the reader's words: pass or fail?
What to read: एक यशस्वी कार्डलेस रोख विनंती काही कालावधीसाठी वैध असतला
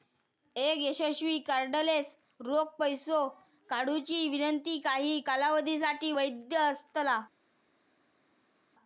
fail